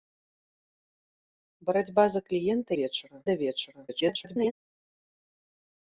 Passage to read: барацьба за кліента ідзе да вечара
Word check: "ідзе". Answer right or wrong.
wrong